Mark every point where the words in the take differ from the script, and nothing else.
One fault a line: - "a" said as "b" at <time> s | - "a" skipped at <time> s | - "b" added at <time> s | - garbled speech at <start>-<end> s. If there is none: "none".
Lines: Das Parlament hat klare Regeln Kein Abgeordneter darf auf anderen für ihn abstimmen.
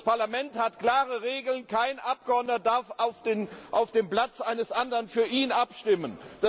- "dem Platz eines" added at 3.9 s